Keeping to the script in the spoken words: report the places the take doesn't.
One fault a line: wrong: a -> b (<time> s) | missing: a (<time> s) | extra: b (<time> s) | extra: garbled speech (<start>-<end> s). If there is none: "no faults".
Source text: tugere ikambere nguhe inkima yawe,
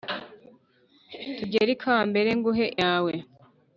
missing: inkima (2.6 s)